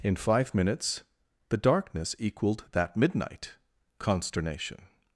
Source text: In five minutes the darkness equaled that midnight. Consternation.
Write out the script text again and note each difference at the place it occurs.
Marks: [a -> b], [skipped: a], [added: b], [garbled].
In five minutes the darkness equaled that midnight. Consternation.